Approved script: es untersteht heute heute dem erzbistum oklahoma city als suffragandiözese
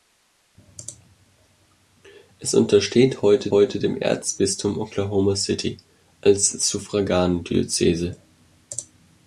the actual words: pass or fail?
pass